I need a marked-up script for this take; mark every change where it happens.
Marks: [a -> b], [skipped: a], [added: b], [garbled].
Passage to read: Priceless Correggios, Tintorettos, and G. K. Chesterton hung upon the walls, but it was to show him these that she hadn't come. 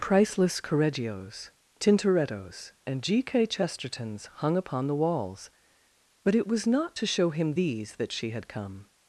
Priceless Correggios, Tintorettos, and G. K. [Chesterton -> Chestertons] hung upon the walls, but it was [added: not] to show him these that she [hadn't -> had] come.